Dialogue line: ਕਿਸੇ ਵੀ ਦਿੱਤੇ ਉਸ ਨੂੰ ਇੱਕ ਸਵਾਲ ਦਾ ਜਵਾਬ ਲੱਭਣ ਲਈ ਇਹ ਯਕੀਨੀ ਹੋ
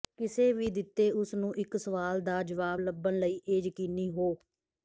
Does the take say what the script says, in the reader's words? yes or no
yes